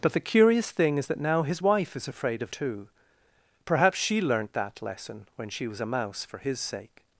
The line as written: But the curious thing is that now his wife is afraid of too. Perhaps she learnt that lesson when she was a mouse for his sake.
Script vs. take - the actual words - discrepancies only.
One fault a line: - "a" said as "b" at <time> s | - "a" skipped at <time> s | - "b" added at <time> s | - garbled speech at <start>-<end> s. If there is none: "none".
none